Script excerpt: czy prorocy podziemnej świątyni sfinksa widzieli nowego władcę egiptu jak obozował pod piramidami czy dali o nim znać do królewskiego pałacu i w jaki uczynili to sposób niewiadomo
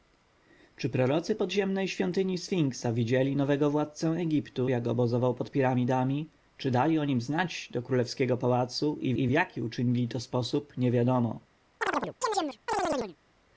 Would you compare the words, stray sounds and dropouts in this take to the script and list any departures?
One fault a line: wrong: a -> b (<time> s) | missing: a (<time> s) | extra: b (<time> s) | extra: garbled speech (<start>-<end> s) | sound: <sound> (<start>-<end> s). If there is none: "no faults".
extra: i (9.1 s)
sound: chirp (11.8-13.2 s)